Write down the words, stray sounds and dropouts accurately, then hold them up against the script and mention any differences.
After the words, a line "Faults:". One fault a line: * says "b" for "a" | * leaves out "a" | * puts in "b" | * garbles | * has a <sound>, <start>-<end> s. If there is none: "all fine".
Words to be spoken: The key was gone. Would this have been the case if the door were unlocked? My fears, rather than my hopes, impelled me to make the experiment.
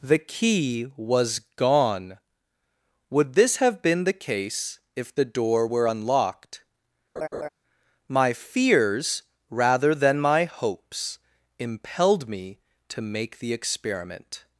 The key was gone. Would this have been the case if the door were unlocked? My fears, rather than my hopes, impelled me to make the experiment.
Faults:
* has a laugh, 7.2-7.5 s